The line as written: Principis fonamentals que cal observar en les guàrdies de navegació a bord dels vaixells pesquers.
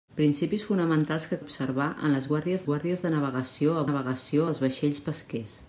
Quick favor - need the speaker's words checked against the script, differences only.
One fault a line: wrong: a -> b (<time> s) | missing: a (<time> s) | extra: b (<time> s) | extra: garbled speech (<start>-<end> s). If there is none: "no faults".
missing: cal (1.4 s)
extra: guàrdies (2.7 s)
wrong: bord -> navegació (3.9 s)